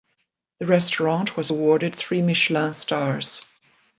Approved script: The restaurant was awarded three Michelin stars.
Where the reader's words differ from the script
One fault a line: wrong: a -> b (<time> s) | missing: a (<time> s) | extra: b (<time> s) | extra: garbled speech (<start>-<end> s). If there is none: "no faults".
no faults